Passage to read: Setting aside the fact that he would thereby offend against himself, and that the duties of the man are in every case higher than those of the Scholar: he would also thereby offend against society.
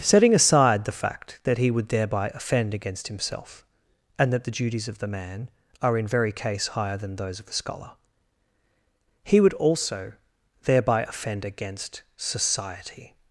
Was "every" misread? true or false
true